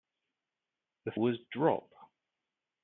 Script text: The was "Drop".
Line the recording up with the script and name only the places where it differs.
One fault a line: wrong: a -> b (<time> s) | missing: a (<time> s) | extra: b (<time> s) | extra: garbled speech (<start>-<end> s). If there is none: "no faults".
no faults